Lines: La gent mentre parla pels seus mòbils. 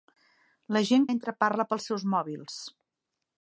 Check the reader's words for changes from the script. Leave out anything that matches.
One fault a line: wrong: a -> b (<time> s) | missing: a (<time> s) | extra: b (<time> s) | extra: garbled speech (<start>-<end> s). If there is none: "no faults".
no faults